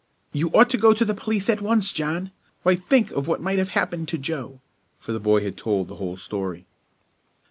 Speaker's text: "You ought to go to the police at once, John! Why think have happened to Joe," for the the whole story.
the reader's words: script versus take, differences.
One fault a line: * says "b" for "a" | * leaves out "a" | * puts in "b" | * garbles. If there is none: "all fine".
* puts in "of what might"
* puts in "boy had told"